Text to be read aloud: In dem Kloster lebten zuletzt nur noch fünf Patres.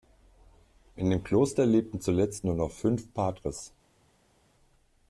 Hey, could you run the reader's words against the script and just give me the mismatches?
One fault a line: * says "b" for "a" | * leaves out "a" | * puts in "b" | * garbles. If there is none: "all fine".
all fine